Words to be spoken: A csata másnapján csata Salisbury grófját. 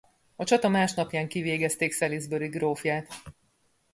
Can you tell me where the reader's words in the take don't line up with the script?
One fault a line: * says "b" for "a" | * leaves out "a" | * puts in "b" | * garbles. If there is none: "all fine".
* says "kivégezték" for "csata"